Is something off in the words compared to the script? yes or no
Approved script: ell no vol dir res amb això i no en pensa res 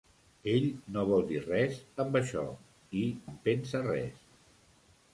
yes